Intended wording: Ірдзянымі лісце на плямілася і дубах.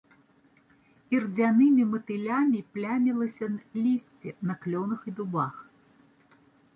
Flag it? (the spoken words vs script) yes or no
yes